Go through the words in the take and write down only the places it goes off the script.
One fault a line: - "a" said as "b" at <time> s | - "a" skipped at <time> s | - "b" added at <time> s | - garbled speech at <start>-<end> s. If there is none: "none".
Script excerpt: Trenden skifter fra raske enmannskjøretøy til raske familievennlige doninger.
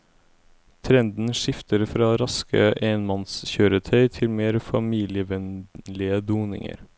- "raske" said as "mer" at 4.3 s